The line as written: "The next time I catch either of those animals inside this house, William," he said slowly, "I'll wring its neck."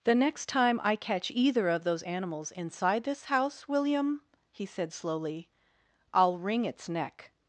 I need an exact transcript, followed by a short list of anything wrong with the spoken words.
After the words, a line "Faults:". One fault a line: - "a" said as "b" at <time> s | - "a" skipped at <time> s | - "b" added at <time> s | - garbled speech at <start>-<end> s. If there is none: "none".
"The next time I catch either of those animals inside this house, William," he said slowly, "I'll wring its neck."
Faults:
none